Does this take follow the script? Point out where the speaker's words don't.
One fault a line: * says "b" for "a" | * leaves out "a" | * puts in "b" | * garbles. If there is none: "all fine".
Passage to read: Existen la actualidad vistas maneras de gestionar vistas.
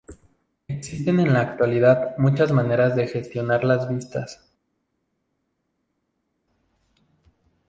* puts in "en"
* says "muchas" for "vistas"
* puts in "las"